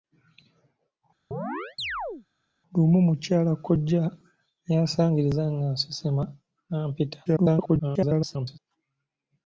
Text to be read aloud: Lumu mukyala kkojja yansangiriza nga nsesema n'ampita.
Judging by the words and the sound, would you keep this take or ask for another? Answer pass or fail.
fail